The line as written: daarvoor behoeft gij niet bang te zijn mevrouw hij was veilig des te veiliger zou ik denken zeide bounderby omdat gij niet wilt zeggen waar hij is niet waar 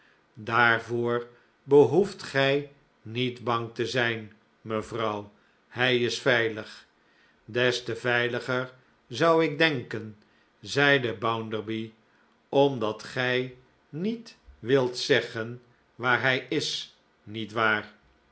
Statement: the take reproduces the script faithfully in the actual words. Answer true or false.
false